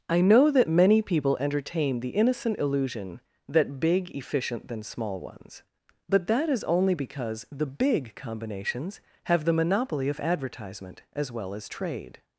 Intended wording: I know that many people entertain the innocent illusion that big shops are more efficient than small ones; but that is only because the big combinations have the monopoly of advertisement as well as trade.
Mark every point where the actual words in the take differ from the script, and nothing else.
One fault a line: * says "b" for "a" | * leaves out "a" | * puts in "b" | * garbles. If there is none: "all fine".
* leaves out "shops are more"